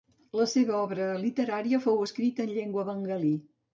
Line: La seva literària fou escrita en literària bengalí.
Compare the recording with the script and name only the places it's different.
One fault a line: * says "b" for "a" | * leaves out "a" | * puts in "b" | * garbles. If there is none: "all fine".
* puts in "obra"
* says "llengua" for "literària"